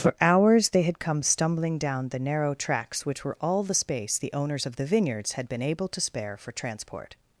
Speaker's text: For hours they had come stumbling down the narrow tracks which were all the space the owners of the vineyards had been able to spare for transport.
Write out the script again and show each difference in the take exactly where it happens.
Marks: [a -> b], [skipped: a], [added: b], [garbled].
For hours they had come stumbling down the narrow tracks which were all the space the owners of the vineyards had been able to spare for transport.